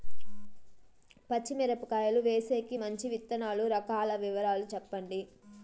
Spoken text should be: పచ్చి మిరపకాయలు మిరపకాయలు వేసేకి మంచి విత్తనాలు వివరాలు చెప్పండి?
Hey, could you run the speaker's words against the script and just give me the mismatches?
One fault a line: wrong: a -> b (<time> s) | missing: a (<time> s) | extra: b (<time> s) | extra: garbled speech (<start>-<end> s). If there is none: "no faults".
missing: మిరపకాయలు (2.2 s)
extra: రకాల (3.7 s)